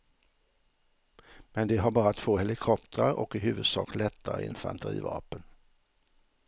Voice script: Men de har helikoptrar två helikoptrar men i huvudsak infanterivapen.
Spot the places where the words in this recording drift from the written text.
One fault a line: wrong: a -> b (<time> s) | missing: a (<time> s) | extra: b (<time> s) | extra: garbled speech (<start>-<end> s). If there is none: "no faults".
wrong: helikoptrar -> bara (1.9 s)
wrong: men -> och (3.1 s)
extra: lättare (4.0 s)